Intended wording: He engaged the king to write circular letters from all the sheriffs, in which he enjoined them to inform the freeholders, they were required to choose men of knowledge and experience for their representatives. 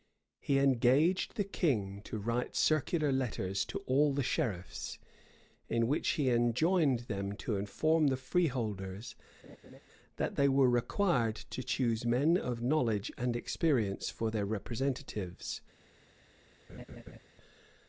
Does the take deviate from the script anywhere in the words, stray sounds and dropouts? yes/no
yes